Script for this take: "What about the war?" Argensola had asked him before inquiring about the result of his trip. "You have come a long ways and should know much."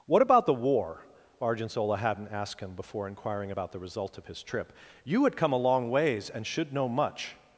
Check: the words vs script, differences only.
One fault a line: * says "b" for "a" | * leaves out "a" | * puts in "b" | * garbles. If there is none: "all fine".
* says "hadn't" for "had"
* says "had" for "have"